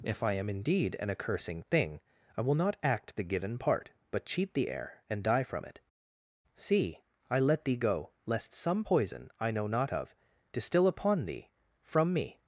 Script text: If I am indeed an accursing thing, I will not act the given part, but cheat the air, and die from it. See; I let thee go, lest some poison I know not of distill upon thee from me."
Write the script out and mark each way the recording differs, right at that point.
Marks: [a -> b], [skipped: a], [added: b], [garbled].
If I am indeed an accursing thing, I will not act the given part, but cheat the air, and die from it. See; I let thee go, lest some poison I know not of distill upon thee from me."